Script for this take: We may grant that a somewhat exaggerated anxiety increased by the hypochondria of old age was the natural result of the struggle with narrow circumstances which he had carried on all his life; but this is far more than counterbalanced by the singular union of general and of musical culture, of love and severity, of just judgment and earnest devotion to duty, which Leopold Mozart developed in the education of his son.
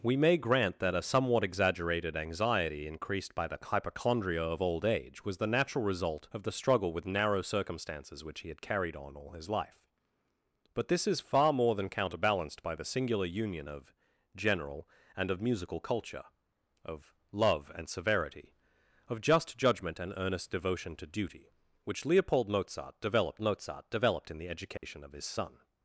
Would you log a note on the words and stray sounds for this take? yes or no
yes